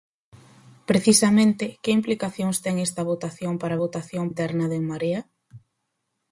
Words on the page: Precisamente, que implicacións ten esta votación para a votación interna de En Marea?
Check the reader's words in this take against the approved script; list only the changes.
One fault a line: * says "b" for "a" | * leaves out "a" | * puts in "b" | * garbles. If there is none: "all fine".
all fine